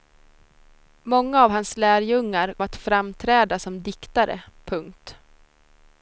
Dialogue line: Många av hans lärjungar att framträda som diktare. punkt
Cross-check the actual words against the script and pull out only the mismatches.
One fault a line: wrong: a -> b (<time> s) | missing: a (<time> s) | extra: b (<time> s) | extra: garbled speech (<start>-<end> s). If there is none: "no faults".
no faults